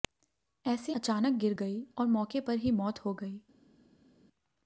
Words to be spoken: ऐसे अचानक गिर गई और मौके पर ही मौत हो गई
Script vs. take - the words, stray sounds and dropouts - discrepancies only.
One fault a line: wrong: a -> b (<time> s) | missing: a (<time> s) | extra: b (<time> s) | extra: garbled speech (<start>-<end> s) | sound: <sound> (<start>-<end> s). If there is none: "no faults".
no faults